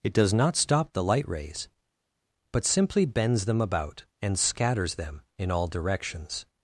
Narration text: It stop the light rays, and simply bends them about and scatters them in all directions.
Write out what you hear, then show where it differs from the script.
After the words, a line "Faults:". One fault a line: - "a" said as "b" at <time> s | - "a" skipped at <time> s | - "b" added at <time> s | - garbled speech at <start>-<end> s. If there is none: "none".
It does not stop the light rays, but simply bends them about and scatters them in all directions.
Faults:
- "does not" added at 0.1 s
- "and" said as "but" at 2.5 s